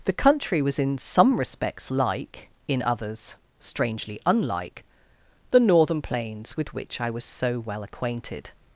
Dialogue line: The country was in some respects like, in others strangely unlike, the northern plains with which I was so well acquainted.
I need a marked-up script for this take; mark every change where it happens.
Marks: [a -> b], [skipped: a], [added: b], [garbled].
The country was in some respects like, in others strangely unlike, the northern plains with which I was so well acquainted.